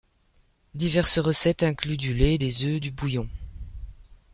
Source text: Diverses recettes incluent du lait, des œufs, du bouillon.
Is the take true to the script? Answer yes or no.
yes